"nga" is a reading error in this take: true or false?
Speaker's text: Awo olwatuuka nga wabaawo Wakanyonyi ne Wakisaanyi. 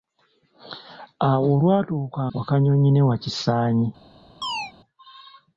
true